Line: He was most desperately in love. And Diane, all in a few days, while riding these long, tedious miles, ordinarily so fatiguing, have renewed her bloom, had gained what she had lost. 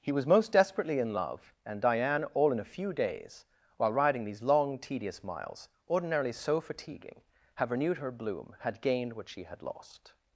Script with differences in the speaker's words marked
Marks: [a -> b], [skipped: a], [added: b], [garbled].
He was most desperately in love. And Diane, all in a few days, while riding these long, tedious miles, ordinarily so fatiguing, have renewed her bloom, had gained what she had lost.